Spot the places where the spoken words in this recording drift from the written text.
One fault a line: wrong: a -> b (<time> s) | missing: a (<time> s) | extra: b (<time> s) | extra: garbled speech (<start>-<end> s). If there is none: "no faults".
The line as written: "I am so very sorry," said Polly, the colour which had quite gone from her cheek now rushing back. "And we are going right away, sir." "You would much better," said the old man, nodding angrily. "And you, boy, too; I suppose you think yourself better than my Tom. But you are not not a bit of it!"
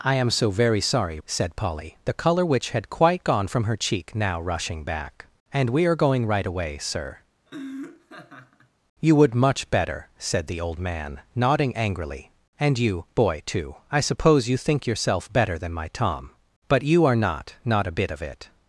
no faults